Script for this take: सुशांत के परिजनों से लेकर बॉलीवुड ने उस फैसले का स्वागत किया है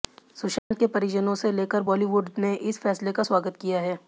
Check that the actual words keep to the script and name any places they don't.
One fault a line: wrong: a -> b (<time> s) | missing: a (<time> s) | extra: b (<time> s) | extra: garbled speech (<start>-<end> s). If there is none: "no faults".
wrong: उस -> इस (2.5 s)